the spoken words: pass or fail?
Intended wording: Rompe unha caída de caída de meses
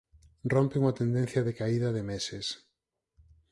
fail